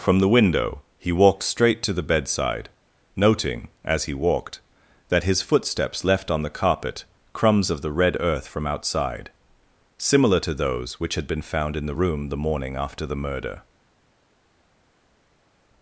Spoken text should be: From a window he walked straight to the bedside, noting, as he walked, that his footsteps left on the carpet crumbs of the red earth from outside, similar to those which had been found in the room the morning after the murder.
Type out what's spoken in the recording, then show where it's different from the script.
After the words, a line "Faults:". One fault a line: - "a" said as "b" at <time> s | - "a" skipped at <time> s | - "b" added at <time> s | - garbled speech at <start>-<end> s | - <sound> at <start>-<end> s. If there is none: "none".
From the window he walked straight to the bedside, noting, as he walked, that his footsteps left on the carpet crumbs of the red earth from outside, similar to those which had been found in the room the morning after the murder.
Faults:
- "a" said as "the" at 0.2 s